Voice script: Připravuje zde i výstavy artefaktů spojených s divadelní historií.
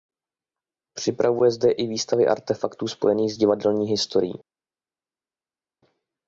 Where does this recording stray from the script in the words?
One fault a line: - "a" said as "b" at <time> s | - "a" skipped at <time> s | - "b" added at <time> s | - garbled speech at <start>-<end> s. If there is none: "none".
none